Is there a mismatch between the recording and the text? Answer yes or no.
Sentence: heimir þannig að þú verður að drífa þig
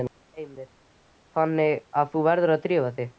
no